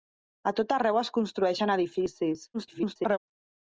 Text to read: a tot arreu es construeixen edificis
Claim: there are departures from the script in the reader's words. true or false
true